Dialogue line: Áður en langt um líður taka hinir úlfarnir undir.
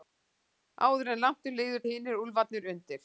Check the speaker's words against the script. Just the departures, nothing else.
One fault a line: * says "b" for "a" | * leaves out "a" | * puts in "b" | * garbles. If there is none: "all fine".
* leaves out "taka"